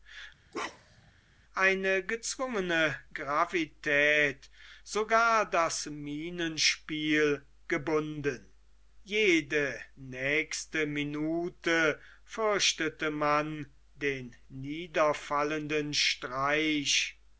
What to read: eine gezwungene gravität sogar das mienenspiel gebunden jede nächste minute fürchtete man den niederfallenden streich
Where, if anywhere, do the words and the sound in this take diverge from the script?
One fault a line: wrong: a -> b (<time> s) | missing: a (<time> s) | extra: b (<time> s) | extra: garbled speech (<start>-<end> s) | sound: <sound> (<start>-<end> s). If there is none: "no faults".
sound: bark (0.5-1.1 s)